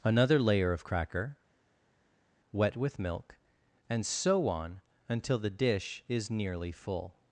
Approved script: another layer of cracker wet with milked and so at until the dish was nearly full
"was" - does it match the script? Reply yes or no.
no